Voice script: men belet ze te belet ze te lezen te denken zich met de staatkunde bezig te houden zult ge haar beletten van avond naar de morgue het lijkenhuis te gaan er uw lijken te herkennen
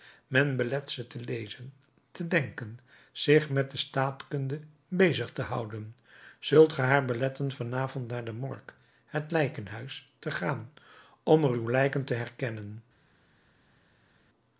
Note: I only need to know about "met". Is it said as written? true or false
true